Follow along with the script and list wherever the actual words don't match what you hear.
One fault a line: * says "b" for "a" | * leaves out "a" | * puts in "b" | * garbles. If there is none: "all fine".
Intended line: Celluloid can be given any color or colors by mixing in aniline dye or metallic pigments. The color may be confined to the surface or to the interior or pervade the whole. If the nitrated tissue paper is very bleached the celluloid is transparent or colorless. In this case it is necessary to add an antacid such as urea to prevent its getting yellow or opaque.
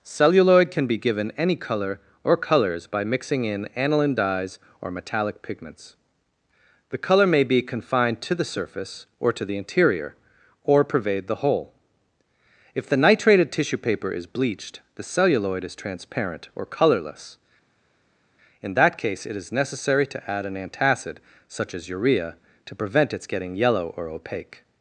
* says "dyes" for "dye"
* leaves out "very"
* says "that" for "this"